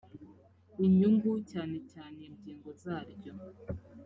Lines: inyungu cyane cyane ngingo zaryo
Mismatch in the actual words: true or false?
false